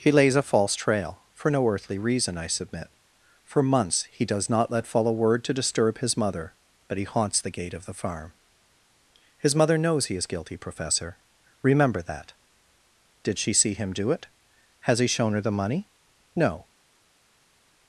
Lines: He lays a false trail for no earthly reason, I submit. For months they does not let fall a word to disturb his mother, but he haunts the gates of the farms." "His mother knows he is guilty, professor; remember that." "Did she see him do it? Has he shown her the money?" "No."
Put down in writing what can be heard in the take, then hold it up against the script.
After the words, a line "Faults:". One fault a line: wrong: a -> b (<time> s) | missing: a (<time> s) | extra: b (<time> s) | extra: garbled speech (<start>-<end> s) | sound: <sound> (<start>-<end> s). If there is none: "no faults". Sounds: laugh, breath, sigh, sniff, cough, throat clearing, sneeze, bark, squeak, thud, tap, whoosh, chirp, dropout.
He lays a false trail for no earthly reason, I submit. For months he does not let fall a word to disturb his mother, but he haunts the gate of the farm." "His mother knows he is guilty, professor; remember that." "Did she see him do it? Has he shown her the money?" "No."
Faults:
wrong: they -> he (4.1 s)
wrong: gates -> gate (7.5 s)
wrong: farms -> farm (7.9 s)